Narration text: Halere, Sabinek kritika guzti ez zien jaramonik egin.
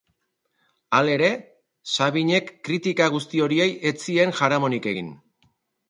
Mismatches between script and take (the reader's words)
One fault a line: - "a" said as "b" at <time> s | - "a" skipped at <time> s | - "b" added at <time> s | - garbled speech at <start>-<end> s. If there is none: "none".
- "horiei" added at 3.5 s